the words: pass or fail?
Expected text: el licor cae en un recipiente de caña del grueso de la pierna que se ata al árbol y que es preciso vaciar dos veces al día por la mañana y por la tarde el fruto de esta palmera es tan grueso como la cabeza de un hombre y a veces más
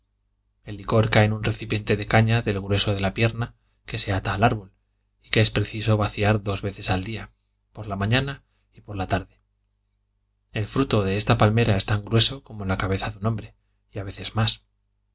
pass